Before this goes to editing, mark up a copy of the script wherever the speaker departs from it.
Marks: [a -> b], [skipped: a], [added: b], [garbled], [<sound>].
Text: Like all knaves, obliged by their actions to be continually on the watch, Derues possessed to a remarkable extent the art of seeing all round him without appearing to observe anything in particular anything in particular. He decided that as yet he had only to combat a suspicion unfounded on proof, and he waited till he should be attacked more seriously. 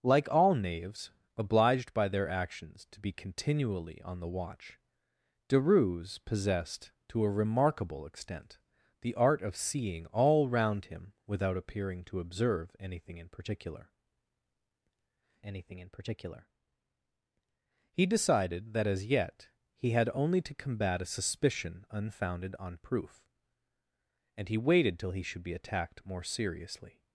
Like all knaves, obliged by their actions to be continually on the watch, Derues possessed to a remarkable extent the art of seeing all round him without appearing to observe anything in particular anything in particular. He decided that as yet he had only to combat a suspicion unfounded on proof, and he waited till he should be attacked more seriously.